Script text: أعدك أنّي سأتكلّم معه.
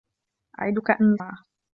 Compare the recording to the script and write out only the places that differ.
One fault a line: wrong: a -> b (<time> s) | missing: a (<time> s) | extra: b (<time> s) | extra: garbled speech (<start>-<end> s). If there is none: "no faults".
missing: سأتكلّم (1.2 s)